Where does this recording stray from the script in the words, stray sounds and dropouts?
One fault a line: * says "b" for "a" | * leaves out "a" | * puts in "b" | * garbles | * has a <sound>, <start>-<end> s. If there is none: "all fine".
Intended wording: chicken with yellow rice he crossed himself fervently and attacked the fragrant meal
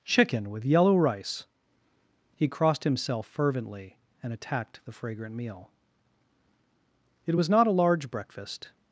* puts in "it was not a large breakfast"